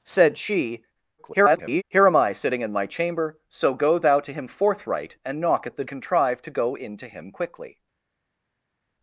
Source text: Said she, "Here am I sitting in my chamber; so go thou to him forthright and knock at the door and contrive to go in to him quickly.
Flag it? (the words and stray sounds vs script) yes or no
yes